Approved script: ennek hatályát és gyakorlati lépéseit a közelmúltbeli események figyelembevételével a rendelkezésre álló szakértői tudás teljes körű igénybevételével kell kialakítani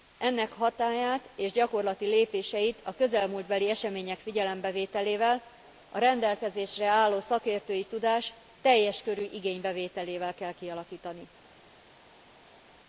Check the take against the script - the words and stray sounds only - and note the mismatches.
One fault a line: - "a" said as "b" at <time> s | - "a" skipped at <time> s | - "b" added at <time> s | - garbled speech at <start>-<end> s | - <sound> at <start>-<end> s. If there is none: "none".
none